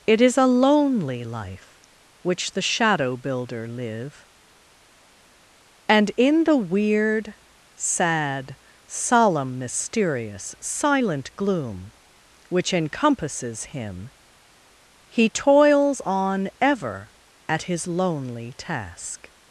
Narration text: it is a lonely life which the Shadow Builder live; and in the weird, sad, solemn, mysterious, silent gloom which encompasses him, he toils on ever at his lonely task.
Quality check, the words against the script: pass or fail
pass